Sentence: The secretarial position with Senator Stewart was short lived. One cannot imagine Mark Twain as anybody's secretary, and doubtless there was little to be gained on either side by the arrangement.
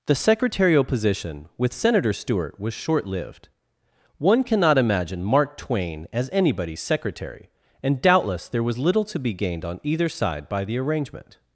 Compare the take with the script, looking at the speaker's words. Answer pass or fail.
pass